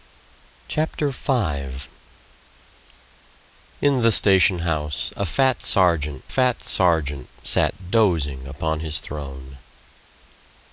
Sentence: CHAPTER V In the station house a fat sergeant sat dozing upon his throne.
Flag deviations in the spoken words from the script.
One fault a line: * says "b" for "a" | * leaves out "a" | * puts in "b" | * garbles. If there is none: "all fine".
* puts in "fat sergeant"